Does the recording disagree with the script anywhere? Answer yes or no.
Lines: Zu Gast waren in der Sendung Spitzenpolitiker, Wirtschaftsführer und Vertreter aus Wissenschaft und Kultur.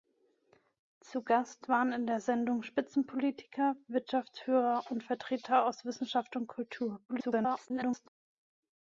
yes